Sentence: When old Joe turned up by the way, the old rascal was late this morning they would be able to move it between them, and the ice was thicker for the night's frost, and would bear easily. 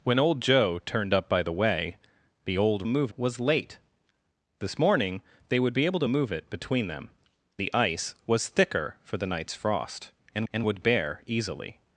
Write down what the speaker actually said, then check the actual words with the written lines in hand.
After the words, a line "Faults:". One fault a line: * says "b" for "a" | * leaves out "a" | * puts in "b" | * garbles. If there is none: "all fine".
When old Joe turned up by the way, the old move was late this morning they would be able to move it between them, the ice was thicker for the night's frost, and and would bear easily.
Faults:
* says "move" for "rascal"
* leaves out "and"
* puts in "and"